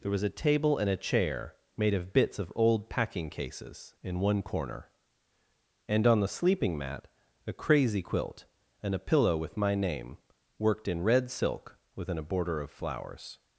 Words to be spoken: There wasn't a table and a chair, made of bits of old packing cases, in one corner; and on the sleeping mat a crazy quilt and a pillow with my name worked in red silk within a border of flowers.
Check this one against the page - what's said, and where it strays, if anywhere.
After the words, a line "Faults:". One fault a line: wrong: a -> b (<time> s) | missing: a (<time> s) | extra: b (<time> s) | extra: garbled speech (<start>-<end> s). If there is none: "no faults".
There was a table and a chair, made of bits of old packing cases, in one corner; and on the sleeping mat a crazy quilt and a pillow with my name worked in red silk within a border of flowers.
Faults:
wrong: wasn't -> was (0.1 s)